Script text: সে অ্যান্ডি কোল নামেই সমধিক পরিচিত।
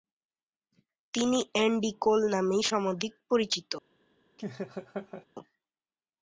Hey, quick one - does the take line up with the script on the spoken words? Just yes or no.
no